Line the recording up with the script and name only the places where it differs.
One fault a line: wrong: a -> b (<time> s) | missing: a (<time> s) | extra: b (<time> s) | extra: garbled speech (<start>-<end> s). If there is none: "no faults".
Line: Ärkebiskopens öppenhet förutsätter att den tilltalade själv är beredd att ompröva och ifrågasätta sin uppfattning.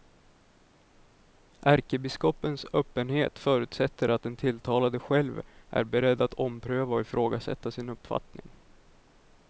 no faults